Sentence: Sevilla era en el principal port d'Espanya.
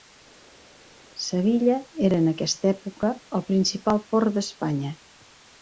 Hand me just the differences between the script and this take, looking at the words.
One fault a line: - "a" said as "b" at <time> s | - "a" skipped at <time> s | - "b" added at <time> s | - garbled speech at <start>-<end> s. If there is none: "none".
- "aquesta època" added at 2.3 s